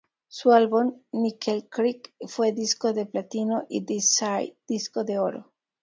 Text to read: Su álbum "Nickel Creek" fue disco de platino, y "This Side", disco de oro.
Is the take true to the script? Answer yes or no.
yes